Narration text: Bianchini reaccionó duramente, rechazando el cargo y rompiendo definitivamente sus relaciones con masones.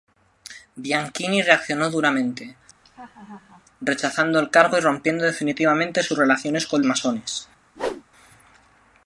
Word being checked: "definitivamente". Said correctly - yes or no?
yes